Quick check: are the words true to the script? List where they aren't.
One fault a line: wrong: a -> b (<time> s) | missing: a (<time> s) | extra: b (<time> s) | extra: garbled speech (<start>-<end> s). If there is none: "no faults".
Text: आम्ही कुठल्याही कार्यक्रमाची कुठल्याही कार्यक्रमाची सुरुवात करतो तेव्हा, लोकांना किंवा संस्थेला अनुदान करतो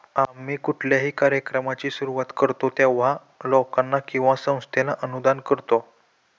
missing: कुठल्याही कार्यक्रमाची (1.9 s)